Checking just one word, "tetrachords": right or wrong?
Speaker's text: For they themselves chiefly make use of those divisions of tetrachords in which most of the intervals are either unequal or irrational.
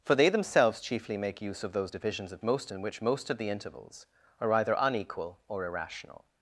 wrong